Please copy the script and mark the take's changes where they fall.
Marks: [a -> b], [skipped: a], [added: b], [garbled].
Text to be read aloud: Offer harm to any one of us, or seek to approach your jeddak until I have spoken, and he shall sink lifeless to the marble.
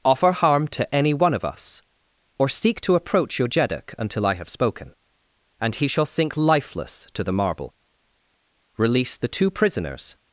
Offer harm to any one of us, or seek to approach your jeddak until I have spoken, and he shall sink lifeless to the marble. [added: Release the two prisoners]